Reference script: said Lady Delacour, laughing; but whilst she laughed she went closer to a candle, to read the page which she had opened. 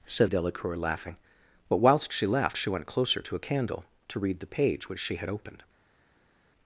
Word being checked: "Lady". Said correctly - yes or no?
no